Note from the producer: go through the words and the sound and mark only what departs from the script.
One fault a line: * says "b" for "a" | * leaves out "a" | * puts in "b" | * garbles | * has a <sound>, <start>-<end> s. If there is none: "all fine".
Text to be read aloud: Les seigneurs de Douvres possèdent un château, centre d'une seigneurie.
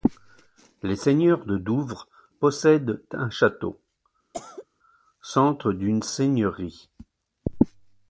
* has a cough, 4.3-4.6 s